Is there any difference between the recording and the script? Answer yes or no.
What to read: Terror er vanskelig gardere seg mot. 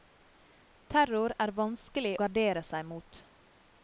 no